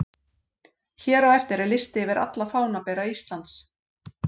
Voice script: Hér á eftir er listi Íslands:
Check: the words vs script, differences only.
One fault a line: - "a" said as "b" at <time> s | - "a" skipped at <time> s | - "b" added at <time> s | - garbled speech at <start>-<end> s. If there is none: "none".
- "yfir alla fánabera" added at 2.0 s